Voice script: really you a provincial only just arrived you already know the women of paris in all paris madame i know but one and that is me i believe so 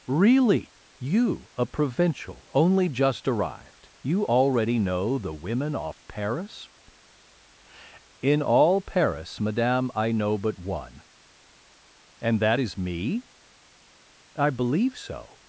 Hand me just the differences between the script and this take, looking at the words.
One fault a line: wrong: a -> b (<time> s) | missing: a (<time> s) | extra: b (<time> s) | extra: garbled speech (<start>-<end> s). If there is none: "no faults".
wrong: of -> off (5.7 s)